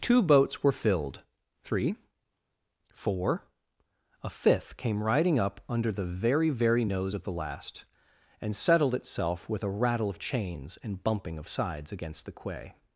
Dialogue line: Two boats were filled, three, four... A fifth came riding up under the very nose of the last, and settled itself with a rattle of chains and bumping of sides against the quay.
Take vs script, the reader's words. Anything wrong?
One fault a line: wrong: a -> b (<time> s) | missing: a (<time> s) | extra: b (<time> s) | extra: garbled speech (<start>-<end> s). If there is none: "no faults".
extra: very (6.5 s)